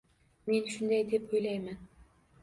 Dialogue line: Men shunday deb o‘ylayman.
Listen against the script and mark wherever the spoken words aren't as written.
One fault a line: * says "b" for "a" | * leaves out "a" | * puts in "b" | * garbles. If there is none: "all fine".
all fine